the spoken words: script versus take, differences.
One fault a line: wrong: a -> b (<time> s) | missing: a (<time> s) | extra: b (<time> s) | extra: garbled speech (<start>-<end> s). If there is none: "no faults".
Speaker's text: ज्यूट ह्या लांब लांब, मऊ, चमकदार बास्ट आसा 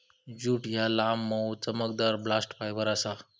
missing: लांब (1.2 s)
extra: फायबर (2.6 s)